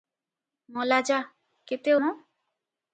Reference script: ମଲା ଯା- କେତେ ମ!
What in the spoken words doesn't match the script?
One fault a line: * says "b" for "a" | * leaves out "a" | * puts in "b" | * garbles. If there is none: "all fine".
all fine